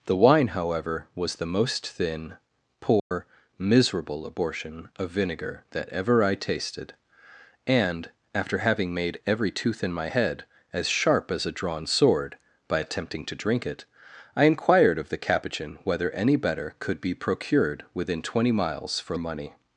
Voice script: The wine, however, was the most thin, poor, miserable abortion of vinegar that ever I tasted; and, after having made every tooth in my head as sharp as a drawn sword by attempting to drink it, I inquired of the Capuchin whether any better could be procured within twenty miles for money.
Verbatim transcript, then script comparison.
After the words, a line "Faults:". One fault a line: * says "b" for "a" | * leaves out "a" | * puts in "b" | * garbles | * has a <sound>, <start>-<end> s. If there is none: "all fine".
The wine, however, was the most thin, poor, miserable abortion of vinegar that ever I tasted; and, after having made every tooth in my head as sharp as a drawn sword by attempting to drink it, I inquired of the Capuchin whether any better could be procured within twenty miles for money.
Faults:
* has a dropout, 3.0-3.1 s